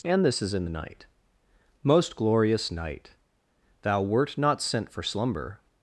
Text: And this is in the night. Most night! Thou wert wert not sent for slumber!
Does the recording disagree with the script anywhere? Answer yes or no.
yes